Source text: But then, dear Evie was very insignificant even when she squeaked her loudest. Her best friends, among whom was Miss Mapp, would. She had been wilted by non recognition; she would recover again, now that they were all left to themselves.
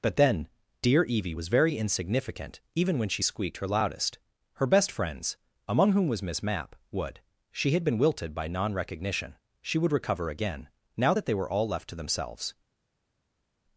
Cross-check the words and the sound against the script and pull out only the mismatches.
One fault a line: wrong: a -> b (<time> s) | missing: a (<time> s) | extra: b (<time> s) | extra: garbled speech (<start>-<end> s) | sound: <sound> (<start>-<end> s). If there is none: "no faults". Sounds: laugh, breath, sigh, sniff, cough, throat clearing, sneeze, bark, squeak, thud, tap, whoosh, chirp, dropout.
no faults